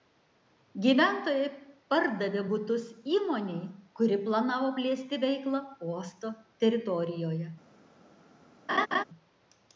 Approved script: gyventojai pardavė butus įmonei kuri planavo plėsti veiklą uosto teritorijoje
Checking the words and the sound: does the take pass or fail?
fail